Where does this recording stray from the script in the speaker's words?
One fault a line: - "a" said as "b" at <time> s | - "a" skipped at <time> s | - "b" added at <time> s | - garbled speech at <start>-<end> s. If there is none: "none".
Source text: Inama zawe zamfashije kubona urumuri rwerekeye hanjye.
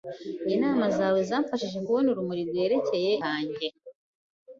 none